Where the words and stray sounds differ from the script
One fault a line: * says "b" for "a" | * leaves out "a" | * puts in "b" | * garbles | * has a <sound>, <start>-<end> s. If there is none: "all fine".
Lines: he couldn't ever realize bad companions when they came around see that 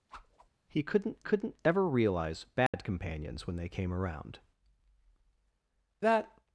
* has a whoosh, 0.1-0.5 s
* puts in "couldn't"
* has a dropout, 2.7-2.7 s
* leaves out "see"